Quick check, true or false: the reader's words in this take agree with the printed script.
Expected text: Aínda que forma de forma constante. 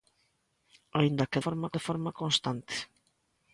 true